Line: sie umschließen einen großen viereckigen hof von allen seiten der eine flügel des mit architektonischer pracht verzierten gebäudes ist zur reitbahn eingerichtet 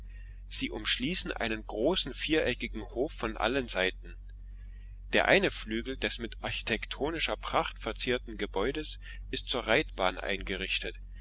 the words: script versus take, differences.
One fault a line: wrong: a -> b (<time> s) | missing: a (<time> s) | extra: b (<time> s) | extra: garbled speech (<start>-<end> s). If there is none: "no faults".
no faults